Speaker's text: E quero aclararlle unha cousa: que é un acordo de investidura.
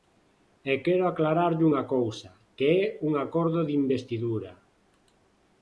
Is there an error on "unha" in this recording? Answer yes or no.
no